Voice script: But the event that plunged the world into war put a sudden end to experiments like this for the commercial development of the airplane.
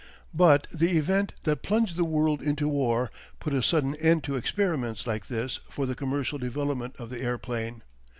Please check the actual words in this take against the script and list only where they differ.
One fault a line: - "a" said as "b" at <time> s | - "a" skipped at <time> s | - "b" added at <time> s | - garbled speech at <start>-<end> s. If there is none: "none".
none